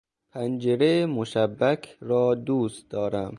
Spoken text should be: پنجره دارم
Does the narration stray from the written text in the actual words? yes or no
yes